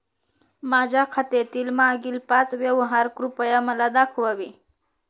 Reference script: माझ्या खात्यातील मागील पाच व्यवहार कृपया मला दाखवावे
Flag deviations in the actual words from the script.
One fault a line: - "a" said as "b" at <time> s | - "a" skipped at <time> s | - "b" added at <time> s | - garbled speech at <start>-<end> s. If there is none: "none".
none